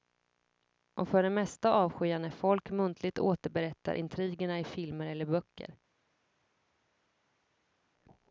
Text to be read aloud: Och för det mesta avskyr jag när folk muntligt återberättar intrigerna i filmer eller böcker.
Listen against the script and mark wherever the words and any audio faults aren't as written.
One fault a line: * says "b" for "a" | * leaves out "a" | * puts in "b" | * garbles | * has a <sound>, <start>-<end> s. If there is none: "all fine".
all fine